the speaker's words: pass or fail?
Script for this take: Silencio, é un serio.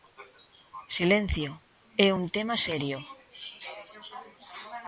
fail